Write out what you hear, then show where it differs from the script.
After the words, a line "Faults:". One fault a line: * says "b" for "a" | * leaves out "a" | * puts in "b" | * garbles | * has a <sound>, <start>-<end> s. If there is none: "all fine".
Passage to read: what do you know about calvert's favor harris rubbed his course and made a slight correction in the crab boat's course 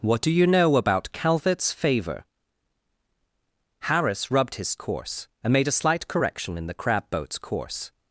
what do you know about calvert's favor harris rubbed his course and made a slight correction in the crab boat's course
Faults:
all fine